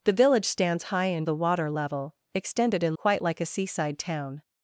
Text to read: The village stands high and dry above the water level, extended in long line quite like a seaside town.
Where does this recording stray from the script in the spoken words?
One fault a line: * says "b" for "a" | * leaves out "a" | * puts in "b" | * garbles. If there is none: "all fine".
* leaves out "dry above"
* leaves out "long line"